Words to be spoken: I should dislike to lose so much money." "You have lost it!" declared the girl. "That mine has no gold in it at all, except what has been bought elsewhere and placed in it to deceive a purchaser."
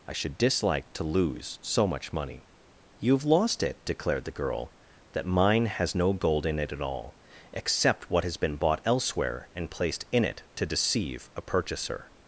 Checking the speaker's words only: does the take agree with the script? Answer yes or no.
yes